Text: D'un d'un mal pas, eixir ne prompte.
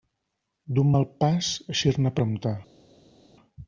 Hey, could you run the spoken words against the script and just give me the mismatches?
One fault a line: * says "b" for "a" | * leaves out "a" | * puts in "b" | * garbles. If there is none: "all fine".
* leaves out "d'un"